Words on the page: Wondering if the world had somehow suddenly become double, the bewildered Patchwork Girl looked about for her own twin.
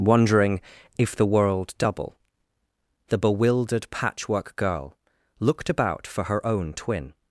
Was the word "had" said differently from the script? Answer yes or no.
yes